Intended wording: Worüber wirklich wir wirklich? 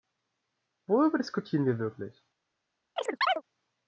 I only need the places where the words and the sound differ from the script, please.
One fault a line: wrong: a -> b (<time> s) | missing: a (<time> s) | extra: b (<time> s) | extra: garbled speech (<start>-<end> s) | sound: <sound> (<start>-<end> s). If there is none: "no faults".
wrong: wirklich -> diskutieren (1.2 s)
sound: chirp (3.0-3.4 s)